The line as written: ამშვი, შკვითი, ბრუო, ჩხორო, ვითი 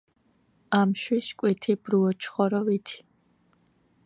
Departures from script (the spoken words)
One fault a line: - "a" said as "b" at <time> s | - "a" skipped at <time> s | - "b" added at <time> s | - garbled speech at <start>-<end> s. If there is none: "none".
none